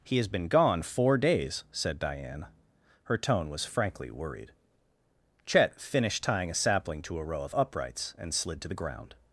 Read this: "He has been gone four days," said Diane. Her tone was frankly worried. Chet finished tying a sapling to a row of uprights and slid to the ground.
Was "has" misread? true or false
false